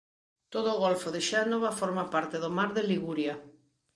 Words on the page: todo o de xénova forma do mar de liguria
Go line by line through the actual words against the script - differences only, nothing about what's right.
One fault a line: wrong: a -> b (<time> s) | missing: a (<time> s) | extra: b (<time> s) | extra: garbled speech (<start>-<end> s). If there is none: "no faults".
extra: golfo (0.8 s)
extra: parte (2.1 s)